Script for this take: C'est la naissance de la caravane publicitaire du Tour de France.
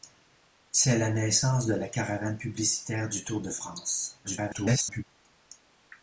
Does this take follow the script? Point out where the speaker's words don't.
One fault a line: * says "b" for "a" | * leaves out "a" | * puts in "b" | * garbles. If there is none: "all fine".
* garbles